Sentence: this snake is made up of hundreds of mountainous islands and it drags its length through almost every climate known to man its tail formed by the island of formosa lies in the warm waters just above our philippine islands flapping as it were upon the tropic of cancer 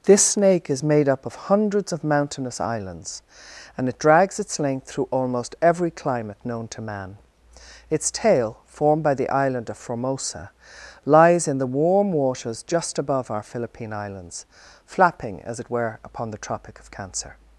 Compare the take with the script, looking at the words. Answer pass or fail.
pass